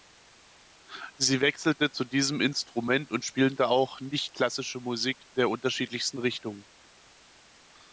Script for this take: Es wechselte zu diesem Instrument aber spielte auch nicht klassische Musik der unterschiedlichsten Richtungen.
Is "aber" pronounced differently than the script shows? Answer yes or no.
yes